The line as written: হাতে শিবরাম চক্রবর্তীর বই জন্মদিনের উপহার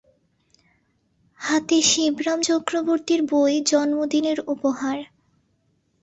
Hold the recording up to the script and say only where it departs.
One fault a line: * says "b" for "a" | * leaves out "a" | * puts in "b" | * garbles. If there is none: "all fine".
all fine